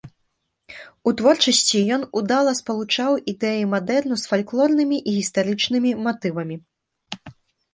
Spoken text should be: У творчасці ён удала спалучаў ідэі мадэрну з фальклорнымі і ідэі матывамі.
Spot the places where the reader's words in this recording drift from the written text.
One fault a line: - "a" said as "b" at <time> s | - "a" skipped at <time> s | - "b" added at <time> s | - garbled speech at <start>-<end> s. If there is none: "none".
- "ідэі" said as "гістарычнымі" at 5.2 s